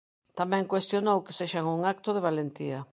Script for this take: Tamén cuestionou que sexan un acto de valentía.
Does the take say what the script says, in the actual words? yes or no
yes